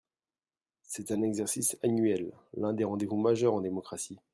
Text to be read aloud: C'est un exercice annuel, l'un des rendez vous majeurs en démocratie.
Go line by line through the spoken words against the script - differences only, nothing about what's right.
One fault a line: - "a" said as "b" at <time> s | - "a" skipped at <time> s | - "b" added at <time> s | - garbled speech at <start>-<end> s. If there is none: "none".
none